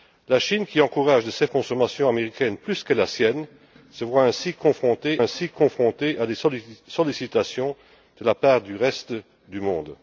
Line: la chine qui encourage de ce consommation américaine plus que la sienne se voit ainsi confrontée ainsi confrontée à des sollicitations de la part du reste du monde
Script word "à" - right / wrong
right